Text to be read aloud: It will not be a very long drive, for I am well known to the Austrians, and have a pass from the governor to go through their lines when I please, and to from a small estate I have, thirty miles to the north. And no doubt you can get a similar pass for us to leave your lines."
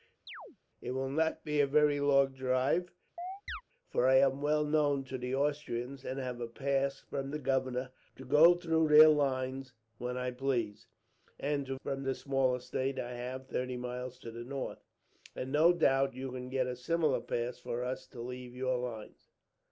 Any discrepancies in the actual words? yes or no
no